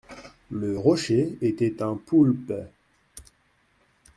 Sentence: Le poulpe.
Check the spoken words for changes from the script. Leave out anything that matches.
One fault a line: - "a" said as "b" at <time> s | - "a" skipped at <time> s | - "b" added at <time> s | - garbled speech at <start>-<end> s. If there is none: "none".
- "rocher était un" added at 0.8 s